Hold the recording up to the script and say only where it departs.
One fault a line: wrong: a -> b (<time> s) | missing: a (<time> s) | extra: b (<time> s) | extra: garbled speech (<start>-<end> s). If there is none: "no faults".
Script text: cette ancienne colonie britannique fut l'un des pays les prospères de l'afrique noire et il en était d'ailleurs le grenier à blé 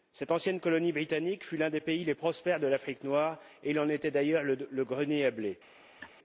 no faults